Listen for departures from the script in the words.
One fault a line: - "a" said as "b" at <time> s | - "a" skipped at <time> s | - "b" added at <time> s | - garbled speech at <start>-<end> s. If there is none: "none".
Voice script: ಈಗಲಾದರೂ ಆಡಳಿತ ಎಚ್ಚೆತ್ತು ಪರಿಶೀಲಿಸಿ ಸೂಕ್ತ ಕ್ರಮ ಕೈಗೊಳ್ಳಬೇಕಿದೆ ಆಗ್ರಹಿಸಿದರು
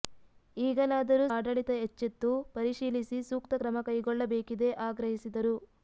none